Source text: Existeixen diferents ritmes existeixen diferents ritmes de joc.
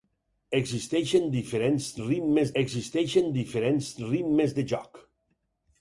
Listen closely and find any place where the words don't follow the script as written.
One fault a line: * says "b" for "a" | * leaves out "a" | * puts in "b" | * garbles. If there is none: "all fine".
all fine